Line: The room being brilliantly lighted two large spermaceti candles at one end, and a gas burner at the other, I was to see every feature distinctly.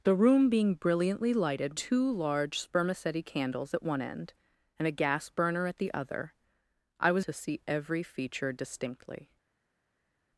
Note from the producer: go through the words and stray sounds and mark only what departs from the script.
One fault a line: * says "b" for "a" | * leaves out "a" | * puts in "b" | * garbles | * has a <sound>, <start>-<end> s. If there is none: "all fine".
all fine